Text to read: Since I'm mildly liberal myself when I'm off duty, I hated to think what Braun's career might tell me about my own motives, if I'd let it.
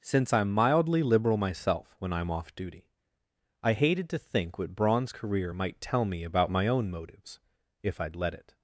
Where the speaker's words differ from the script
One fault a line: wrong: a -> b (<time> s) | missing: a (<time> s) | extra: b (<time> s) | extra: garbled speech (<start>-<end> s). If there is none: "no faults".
no faults